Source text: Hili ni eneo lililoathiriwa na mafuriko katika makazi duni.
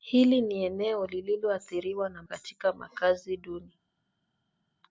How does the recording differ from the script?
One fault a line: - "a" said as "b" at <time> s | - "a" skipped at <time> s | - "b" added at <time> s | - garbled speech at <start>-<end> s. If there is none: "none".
- "mafuriko" skipped at 2.2 s